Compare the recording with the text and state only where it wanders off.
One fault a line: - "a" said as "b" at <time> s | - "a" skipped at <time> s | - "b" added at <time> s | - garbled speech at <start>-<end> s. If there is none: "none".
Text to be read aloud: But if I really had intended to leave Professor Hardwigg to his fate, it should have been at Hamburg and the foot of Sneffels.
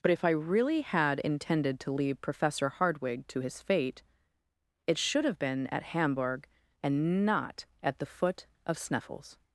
- "not at" added at 7.2 s